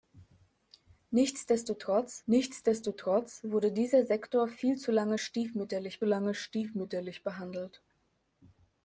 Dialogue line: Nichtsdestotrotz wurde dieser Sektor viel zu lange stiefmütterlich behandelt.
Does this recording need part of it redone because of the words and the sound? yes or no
yes